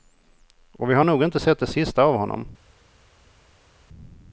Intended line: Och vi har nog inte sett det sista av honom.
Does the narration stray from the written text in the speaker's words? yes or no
no